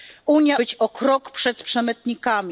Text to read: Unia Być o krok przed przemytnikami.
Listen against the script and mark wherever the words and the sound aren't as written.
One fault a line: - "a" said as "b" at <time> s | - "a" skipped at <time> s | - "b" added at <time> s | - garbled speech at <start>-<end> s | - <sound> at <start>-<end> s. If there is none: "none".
none